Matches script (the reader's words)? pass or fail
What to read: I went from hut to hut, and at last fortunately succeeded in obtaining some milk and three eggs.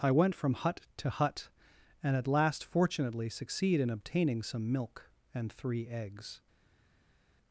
fail